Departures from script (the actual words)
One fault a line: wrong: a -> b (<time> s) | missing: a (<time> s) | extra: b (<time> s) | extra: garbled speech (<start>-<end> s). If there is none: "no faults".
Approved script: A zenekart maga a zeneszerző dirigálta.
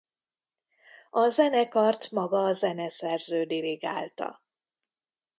no faults